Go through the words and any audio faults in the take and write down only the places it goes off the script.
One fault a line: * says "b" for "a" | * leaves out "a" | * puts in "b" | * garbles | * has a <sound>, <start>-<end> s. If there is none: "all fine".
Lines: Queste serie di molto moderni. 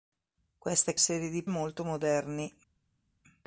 all fine